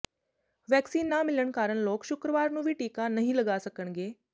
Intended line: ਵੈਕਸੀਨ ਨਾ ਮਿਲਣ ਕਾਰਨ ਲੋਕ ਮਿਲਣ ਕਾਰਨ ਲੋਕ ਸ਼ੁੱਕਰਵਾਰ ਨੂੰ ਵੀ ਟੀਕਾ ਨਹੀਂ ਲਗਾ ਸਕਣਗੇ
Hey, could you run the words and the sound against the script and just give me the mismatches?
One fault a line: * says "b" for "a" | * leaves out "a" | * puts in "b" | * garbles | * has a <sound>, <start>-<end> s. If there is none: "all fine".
* leaves out "ਮਿਲਣ ਕਾਰਨ ਲੋਕ"